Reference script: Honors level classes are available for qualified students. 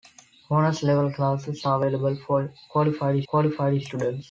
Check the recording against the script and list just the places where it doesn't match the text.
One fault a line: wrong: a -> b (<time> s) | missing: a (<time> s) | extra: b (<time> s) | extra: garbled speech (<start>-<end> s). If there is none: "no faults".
extra: qualified (3.3 s)